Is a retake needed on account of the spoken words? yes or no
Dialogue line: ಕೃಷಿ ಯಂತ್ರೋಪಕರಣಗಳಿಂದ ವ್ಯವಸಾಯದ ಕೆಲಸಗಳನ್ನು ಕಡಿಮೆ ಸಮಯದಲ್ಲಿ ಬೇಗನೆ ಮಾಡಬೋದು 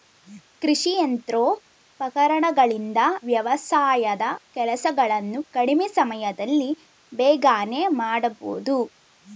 no